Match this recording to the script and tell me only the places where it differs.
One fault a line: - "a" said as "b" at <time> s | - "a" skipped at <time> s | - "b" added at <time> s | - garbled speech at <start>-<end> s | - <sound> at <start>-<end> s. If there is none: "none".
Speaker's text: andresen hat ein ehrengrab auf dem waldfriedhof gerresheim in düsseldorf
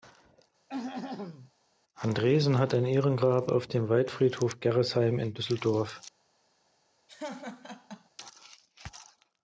- throat clearing at 0.7-1.5 s
- laugh at 7.1-8.1 s